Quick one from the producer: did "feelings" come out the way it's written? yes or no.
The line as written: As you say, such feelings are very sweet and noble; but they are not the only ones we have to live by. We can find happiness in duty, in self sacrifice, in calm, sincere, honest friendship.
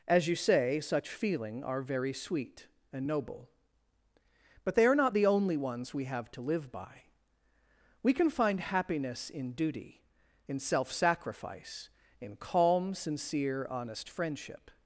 no